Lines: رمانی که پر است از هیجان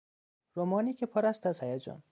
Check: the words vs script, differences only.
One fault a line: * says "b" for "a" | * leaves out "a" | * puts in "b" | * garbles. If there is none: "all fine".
all fine